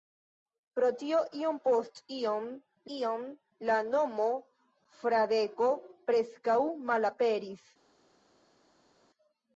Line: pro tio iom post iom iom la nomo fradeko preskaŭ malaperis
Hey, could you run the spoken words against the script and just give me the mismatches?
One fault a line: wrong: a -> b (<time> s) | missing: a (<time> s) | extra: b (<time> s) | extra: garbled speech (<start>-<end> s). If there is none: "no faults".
no faults